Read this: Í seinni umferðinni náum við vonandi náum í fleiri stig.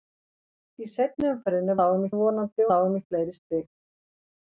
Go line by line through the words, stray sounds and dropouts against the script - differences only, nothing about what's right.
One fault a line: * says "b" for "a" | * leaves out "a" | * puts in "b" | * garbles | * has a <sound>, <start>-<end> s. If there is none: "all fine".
all fine